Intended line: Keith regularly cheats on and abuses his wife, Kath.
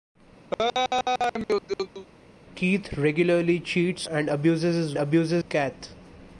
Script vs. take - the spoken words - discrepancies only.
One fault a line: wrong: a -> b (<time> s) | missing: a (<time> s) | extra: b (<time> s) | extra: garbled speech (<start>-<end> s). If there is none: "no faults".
missing: on (4.1 s)
wrong: wife -> abuses (5.0 s)